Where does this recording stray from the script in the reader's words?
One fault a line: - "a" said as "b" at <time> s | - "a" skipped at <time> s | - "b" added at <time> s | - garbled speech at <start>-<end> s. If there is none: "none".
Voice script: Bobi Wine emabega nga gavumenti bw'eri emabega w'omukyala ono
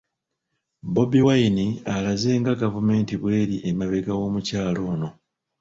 - "emabega" said as "alaze" at 1.9 s